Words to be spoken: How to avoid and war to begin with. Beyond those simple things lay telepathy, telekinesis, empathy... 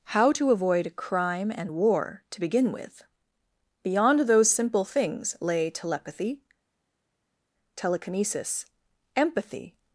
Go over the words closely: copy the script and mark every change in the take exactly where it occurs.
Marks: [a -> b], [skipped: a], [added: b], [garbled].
How to avoid [added: crime] and war to begin with. Beyond those simple things lay telepathy, telekinesis, empathy...